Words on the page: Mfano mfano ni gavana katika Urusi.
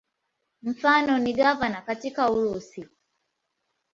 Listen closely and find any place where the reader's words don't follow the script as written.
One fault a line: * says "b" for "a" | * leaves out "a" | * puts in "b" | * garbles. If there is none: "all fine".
* leaves out "mfano"